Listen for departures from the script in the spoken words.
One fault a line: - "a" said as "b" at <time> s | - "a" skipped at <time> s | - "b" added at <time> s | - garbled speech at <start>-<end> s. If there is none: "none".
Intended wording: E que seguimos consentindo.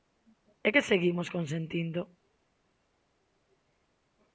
none